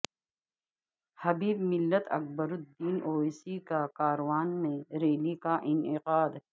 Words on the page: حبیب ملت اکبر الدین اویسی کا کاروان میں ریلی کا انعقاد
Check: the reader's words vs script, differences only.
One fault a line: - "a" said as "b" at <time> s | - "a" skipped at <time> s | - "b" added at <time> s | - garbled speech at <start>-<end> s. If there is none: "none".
none